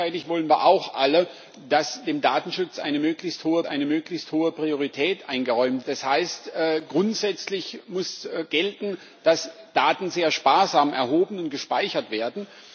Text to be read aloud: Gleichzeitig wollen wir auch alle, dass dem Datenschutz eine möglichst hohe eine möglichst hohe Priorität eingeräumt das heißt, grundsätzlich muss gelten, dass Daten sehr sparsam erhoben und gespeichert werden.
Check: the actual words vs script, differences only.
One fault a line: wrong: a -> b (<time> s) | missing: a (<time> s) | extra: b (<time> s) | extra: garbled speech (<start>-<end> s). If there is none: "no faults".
no faults